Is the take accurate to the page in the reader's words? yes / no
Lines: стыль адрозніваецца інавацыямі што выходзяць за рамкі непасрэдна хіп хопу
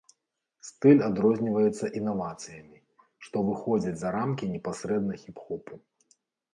yes